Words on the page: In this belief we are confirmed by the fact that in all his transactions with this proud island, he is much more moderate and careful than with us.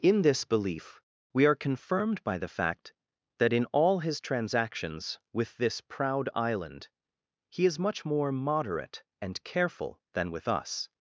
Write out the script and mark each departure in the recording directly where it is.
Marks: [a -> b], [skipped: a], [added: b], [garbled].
In this belief we are confirmed by the fact that in all his transactions with this proud island, he is much more moderate and careful than with us.